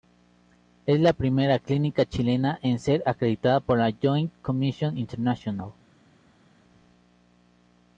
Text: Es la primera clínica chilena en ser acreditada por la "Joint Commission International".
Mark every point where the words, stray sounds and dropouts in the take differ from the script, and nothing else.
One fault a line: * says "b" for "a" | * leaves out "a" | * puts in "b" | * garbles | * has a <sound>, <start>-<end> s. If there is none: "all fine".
all fine